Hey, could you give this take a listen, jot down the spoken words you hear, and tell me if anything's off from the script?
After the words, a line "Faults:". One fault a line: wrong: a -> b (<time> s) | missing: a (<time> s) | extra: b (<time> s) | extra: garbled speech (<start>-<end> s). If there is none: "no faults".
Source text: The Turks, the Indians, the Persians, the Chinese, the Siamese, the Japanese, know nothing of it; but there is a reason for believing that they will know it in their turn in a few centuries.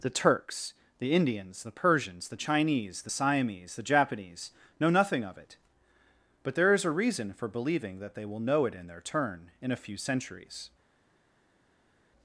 The Turks, the Indians, the Persians, the Chinese, the Siamese, the Japanese, know nothing of it; but there is a reason for believing that they will know it in their turn in a few centuries.
Faults:
no faults